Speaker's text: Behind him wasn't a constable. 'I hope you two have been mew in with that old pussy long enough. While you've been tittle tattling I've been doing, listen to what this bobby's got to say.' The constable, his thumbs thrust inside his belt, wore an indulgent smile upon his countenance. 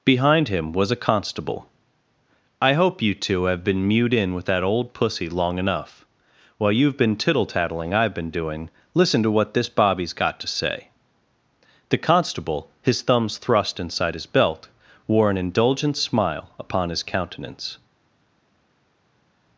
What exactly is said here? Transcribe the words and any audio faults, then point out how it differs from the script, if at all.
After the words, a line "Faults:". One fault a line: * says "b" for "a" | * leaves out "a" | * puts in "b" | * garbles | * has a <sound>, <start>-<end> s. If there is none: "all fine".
Behind him was a constable. 'I hope you two have been mewed in with that old pussy long enough. While you've been tittle tattling I've been doing, listen to what this bobby's got to say.' The constable, his thumbs thrust inside his belt, wore an indulgent smile upon his countenance.
Faults:
* says "was" for "wasn't"
* says "mewed" for "mew"